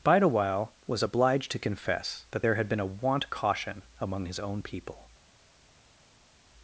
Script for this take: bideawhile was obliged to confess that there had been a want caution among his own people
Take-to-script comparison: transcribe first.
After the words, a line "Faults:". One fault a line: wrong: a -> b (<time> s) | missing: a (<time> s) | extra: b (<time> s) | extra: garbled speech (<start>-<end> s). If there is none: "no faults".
bideawhile was obliged to confess that there had been a want caution among his own people
Faults:
no faults